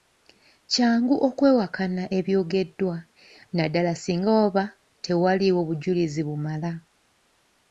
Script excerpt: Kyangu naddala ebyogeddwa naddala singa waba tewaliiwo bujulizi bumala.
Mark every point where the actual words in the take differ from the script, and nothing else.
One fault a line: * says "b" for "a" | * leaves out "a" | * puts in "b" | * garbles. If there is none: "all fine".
* says "okwewakana" for "naddala"